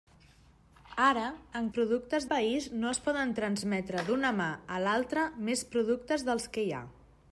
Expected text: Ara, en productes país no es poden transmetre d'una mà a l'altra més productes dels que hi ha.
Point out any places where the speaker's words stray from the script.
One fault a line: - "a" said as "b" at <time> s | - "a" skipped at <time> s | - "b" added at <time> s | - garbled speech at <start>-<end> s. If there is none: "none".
none